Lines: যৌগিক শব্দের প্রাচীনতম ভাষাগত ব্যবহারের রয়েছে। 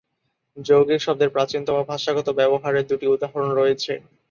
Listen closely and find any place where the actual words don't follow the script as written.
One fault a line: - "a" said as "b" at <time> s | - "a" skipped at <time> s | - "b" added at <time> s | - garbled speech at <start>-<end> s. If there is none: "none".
- "দুটি উদাহরণ" added at 2.9 s